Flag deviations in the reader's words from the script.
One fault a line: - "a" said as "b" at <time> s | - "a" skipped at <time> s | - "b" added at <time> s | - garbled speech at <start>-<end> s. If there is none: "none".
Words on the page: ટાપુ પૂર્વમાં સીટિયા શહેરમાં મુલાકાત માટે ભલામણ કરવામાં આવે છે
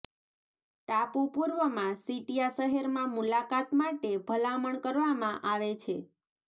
none